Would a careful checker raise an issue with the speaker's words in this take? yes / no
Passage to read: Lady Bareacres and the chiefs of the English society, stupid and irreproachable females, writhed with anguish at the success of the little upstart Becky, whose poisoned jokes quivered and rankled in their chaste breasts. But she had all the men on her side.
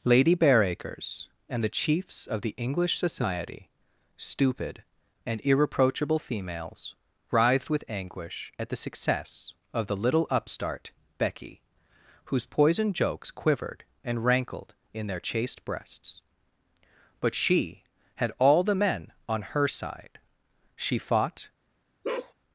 yes